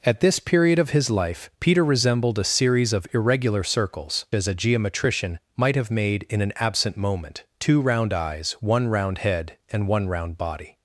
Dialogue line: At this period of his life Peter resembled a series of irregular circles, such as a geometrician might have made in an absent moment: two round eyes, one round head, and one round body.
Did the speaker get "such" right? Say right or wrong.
wrong